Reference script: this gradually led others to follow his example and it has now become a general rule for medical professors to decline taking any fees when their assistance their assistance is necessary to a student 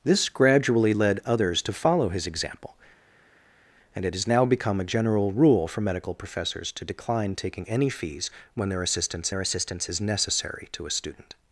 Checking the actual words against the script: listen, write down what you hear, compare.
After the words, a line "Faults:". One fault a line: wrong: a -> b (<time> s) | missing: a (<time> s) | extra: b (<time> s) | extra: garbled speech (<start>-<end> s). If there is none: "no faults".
this gradually led others to follow his example and it has now become a general rule for medical professors to decline taking any fees when their assistance their assistance is necessary to a student
Faults:
no faults